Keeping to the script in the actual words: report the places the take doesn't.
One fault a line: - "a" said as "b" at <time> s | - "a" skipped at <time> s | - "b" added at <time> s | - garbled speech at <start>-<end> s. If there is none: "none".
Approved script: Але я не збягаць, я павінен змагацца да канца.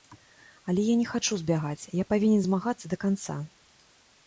- "хачу" added at 1.1 s